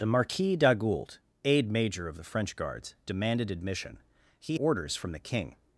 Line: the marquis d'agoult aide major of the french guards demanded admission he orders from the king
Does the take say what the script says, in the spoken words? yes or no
yes